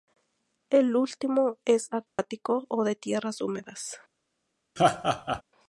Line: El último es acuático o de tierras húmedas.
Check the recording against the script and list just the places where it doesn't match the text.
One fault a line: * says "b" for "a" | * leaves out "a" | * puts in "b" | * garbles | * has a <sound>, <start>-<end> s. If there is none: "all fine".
* has a dropout, 2.1-2.2 s
* has a laugh, 4.8-5.4 s